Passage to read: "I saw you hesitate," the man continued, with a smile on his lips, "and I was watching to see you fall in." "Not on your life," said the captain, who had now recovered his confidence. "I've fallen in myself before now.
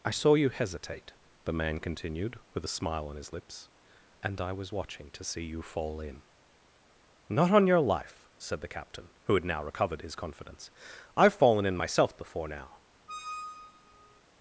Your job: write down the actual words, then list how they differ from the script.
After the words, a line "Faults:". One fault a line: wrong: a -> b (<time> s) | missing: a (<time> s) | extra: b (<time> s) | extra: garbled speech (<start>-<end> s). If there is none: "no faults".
"I saw you hesitate," the man continued, with a smile on his lips, "and I was watching to see you fall in." "Not on your life," said the captain, who had now recovered his confidence. "I've fallen in myself before now.
Faults:
no faults